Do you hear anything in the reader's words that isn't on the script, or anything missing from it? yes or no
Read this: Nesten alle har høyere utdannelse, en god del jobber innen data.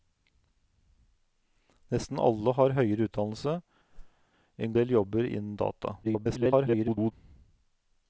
yes